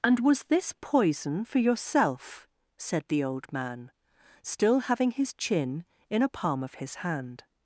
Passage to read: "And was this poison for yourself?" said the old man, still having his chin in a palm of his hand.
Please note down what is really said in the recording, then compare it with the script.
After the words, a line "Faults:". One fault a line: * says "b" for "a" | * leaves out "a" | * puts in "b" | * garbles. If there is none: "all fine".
"And was this poison for yourself?" said the old man, still having his chin in a palm of his hand.
Faults:
all fine